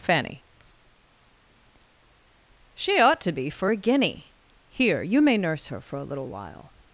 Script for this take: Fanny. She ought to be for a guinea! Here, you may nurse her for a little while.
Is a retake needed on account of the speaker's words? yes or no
no